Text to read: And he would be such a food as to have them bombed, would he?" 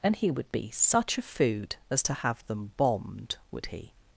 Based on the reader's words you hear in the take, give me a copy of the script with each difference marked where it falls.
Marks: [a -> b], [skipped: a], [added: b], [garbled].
And he would be such a food as to have them bombed, would he?"